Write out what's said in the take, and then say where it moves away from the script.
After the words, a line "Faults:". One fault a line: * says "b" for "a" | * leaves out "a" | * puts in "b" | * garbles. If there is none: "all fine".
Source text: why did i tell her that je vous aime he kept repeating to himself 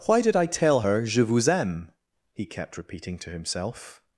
why did i tell her je vous aime he kept repeating to himself
Faults:
* leaves out "that"